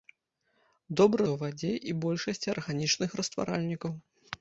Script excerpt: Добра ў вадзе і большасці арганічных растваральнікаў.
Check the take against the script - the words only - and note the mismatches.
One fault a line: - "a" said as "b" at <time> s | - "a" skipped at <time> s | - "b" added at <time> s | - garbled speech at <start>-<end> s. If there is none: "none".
none